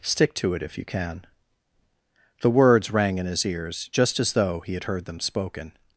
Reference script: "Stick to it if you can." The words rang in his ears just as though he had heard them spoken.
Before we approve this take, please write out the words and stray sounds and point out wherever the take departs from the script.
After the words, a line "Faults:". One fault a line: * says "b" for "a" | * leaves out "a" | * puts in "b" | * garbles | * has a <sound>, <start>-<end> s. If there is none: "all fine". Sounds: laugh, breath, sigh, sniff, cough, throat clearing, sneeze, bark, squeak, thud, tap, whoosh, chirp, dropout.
"Stick to it if you can." The words rang in his ears just as though he had heard them spoken.
Faults:
all fine